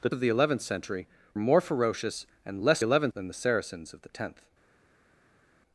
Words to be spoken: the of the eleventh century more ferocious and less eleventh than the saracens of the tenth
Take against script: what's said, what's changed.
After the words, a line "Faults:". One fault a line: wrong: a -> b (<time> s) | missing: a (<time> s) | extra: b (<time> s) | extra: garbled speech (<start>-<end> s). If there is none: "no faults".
the of the eleventh century more ferocious and less eleventh than the saracens of the tenth
Faults:
no faults